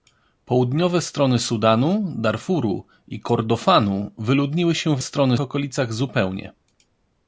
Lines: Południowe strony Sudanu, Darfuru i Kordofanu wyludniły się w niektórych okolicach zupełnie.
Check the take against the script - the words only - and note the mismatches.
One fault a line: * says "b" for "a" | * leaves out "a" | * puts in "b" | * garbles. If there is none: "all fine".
* says "strony" for "niektórych"